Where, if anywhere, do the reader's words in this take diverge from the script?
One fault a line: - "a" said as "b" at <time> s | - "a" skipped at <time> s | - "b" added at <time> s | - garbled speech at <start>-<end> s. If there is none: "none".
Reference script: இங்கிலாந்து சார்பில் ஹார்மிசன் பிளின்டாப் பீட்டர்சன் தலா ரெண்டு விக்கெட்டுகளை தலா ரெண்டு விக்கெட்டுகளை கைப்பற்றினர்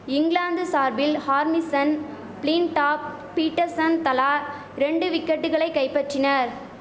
- "தலா ரெண்டு விக்கெட்டுகளை" skipped at 5.7 s